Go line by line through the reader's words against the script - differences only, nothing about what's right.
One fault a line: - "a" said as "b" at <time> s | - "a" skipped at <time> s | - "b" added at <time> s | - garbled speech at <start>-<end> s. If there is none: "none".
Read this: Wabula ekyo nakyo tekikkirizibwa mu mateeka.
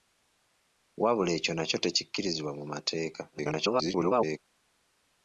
- garbled speech at 3.3-4.4 s